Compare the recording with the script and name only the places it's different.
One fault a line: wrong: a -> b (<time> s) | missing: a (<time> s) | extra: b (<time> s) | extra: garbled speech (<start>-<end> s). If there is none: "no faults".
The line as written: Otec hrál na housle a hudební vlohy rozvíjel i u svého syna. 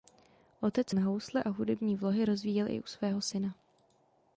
missing: hrál (0.9 s)